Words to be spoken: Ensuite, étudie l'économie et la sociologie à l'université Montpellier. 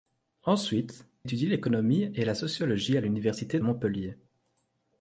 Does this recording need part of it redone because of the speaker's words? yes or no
no